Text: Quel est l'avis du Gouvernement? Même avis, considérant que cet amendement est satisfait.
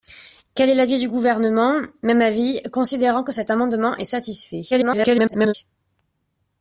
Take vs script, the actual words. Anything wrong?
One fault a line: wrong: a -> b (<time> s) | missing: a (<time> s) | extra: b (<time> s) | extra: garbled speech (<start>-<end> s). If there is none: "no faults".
extra: garbled speech (4.7-5.5 s)